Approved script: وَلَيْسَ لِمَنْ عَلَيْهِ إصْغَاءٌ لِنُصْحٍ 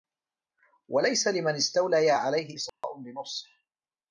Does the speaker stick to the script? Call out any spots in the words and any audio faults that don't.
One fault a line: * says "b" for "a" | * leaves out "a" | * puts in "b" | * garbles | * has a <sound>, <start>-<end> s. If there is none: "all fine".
* puts in "اسْتَوْلَيَا"
* has a dropout, 2.7-2.8 s